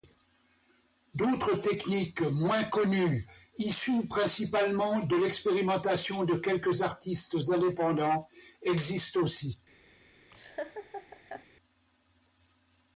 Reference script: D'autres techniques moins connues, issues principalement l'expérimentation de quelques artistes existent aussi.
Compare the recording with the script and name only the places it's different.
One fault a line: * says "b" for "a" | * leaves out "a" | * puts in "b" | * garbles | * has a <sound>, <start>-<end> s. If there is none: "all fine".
* puts in "de"
* puts in "indépendants"
* has a laugh, 10.3-11.5 s